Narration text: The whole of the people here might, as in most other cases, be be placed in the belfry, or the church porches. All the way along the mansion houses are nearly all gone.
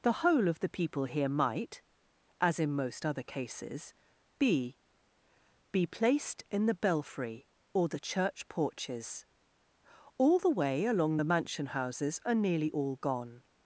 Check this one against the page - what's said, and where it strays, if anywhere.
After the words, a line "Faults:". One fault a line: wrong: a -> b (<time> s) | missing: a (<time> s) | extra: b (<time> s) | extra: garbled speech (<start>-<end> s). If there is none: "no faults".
The whole of the people here might, as in most other cases, be be placed in the belfry, or the church porches. All the way along the mansion houses are nearly all gone.
Faults:
no faults